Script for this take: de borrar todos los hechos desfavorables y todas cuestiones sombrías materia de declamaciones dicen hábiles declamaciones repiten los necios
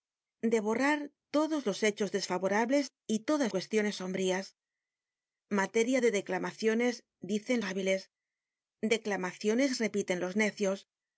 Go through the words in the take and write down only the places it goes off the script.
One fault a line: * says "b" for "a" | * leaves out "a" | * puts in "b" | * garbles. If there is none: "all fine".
all fine